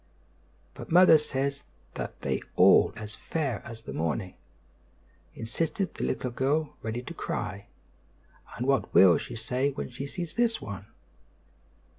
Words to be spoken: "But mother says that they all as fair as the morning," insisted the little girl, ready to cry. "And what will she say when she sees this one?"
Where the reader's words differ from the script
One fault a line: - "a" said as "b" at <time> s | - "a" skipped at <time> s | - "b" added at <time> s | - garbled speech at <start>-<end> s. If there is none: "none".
none